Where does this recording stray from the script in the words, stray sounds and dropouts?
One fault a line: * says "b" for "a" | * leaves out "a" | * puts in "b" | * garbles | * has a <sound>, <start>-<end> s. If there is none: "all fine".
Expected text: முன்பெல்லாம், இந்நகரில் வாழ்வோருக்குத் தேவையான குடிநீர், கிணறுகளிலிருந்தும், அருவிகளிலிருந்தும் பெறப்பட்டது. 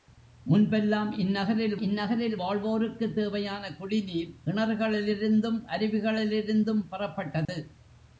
* puts in "இந்நகரில்"
* has a dropout, 7.4-7.5 s